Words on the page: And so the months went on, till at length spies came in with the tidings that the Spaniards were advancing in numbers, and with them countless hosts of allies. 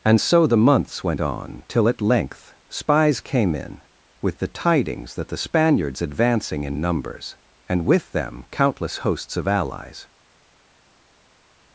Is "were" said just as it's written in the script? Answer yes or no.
no